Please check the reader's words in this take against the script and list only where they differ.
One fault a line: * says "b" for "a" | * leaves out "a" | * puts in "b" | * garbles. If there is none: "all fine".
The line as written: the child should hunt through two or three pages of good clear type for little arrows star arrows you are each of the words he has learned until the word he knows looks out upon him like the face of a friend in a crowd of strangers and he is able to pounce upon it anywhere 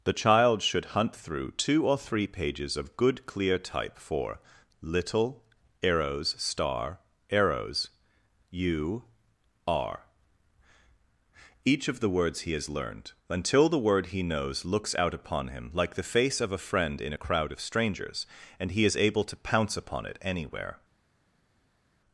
all fine